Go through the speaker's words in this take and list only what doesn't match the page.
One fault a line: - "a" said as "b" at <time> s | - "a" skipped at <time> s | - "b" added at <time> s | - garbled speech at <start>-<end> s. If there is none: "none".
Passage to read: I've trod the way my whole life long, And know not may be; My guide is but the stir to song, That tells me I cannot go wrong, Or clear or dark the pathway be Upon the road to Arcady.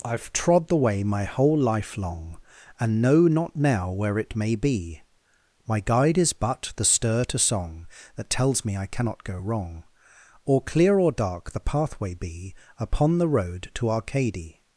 - "now where it" added at 3.5 s